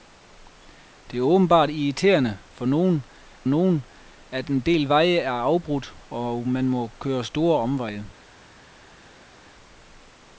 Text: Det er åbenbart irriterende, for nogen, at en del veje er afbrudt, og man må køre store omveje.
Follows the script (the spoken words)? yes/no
no